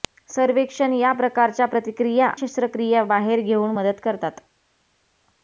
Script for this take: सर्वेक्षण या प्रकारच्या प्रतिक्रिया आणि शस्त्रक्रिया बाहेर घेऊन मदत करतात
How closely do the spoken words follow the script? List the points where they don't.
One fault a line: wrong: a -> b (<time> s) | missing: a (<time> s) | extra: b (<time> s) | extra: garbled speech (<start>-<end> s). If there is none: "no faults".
missing: आणि (2.3 s)